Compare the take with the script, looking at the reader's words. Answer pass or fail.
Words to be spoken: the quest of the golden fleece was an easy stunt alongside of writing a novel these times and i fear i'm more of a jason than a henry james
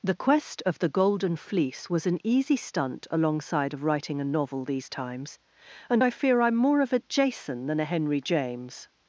pass